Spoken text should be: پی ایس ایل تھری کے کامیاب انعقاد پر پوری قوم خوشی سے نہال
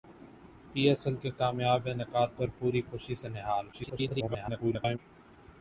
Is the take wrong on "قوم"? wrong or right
wrong